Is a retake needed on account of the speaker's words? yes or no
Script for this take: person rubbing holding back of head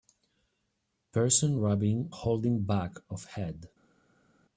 no